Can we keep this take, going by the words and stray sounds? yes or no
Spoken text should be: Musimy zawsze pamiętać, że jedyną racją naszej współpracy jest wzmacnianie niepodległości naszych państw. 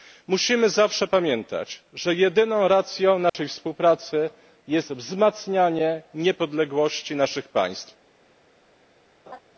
no